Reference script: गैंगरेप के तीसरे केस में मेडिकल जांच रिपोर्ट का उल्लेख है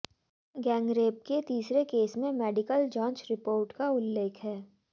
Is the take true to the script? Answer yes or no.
yes